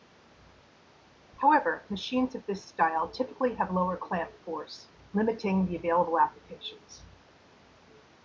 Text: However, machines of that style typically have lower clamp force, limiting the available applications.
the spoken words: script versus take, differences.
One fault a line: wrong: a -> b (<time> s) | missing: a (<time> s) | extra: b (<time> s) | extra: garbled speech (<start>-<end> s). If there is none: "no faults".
wrong: that -> this (2.5 s)